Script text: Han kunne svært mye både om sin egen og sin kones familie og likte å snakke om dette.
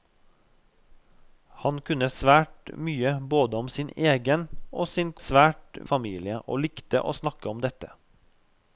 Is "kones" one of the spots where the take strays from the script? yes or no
yes